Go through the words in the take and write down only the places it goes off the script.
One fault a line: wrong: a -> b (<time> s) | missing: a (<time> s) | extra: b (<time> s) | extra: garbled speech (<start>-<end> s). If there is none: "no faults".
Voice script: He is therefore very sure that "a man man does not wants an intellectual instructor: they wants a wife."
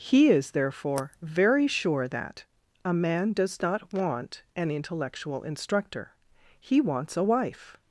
missing: man (3.3 s)
wrong: wants -> want (3.9 s)
wrong: they -> he (6.6 s)